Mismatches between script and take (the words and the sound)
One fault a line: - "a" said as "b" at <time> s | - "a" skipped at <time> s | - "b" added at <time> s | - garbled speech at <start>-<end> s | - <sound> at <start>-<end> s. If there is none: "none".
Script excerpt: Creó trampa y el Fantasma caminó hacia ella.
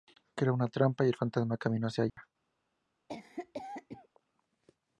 - "una" added at 0.6 s
- dropout at 2.1-2.2 s
- cough at 3.1-4.1 s